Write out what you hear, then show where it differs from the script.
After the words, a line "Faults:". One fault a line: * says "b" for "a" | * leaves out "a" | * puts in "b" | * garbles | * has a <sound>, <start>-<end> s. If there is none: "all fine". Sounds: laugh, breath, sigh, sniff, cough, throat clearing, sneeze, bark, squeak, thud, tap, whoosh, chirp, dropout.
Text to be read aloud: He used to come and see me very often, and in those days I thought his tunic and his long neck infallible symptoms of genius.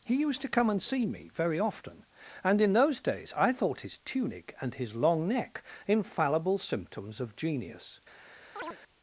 He used to come and see me very often, and in those days I thought his tunic and his long neck infallible symptoms of genius.
Faults:
* has a chirp, 8.6-8.8 s